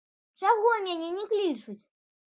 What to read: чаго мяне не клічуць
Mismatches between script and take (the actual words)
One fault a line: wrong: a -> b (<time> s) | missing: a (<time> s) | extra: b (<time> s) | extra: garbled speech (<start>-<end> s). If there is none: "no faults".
no faults